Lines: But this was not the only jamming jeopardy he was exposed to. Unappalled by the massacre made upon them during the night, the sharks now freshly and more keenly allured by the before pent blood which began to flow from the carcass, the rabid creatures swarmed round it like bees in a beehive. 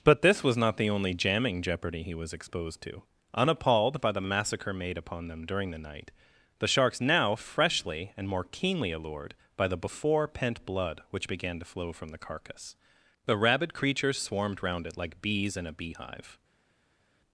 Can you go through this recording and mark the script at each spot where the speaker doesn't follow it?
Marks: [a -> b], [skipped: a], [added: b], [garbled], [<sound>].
But this was not the only jamming jeopardy he was exposed to. Unappalled by the massacre made upon them during the night, the sharks now freshly and more keenly allured by the before pent blood which began to flow from the carcass, the rabid creatures swarmed round it like bees in a beehive.